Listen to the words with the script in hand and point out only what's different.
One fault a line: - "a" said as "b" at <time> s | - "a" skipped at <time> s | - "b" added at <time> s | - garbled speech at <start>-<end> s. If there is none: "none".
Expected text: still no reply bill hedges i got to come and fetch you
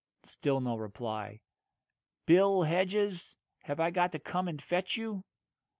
- "have" added at 3.6 s